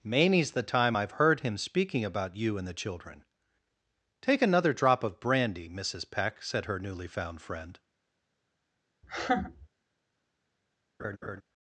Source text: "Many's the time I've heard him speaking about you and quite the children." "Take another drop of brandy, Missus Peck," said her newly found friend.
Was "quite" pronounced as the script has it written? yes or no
no